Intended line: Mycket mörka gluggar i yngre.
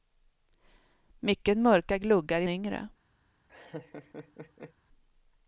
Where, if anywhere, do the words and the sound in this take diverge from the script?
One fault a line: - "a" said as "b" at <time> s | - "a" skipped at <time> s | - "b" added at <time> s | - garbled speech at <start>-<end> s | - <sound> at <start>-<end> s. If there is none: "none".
- laugh at 3.5-4.7 s